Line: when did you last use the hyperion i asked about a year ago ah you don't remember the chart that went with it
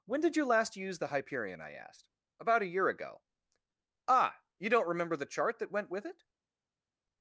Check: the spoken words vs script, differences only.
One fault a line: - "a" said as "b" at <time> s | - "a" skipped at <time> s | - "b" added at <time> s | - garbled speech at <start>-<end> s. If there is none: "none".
none